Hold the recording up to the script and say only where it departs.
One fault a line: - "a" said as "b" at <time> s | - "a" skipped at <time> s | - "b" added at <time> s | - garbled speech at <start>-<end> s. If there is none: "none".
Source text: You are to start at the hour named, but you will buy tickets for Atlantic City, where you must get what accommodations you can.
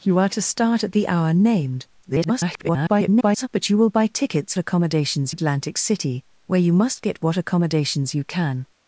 - garbled speech at 2.0-3.5 s
- "for" said as "accommodations" at 4.6 s